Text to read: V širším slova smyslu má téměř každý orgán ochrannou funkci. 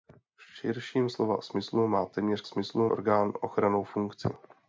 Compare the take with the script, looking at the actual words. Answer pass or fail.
fail